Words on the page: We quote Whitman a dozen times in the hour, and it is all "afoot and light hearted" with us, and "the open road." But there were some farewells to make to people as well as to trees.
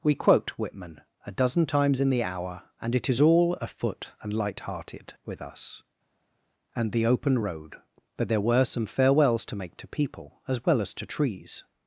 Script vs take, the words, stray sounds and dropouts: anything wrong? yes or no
no